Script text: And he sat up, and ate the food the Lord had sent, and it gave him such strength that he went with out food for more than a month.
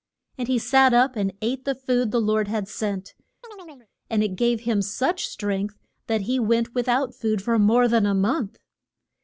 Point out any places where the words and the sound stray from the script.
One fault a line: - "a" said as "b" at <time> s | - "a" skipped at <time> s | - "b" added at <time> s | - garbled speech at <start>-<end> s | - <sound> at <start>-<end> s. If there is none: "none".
- chirp at 3.4-3.9 s